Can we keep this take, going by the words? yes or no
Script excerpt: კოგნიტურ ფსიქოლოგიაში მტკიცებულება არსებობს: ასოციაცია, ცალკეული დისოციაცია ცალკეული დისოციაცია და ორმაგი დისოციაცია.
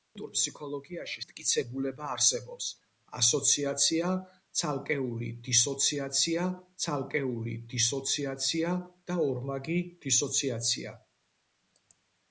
yes